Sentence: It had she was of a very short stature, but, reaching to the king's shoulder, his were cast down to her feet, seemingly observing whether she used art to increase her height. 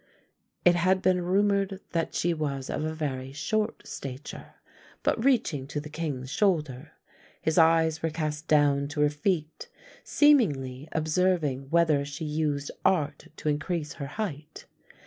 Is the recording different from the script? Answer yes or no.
yes